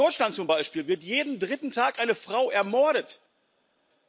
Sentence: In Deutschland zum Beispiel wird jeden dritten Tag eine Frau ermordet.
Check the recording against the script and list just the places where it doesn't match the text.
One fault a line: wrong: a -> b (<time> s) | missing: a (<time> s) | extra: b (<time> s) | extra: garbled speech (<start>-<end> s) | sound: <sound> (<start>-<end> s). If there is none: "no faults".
no faults